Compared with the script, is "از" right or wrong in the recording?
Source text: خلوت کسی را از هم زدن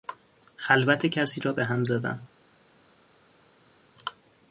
wrong